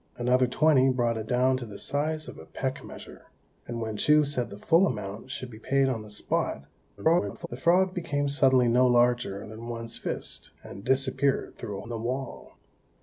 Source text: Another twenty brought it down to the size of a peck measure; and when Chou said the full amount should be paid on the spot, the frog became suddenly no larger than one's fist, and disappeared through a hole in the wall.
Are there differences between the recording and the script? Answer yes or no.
yes